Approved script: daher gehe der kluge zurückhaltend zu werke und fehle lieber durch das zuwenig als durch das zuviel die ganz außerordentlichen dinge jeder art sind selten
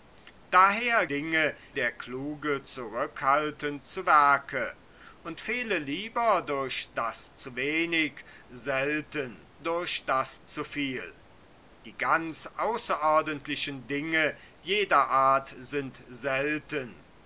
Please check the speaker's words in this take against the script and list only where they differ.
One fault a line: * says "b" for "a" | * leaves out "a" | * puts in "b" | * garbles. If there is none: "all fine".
* says "dinge" for "gehe"
* says "selten" for "als"